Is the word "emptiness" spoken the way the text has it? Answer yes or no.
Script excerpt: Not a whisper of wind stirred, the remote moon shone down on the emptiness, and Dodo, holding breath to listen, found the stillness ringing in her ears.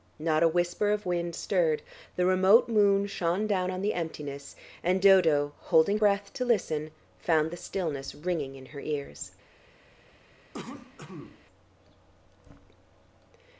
yes